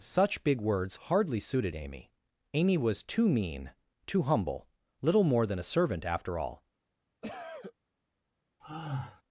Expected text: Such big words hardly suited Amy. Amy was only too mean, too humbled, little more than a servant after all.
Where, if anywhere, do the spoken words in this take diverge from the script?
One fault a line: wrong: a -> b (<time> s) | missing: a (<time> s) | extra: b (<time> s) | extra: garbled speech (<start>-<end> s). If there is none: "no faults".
missing: only (3.0 s)
wrong: humbled -> humble (4.2 s)